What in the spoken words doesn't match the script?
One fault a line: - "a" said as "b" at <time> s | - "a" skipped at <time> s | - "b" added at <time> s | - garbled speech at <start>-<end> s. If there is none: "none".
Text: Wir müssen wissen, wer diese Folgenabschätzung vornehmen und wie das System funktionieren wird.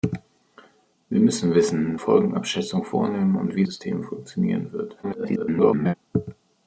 - "wer diese" skipped at 2.0 s
- "das" skipped at 3.6 s
- garbled speech at 5.0-5.9 s